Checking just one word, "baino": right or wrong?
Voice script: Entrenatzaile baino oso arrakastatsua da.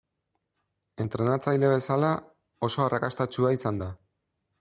wrong